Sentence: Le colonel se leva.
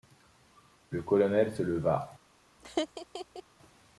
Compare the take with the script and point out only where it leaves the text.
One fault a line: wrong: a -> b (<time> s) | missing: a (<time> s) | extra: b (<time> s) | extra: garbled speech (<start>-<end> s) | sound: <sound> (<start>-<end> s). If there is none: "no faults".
sound: laugh (2.6-3.4 s)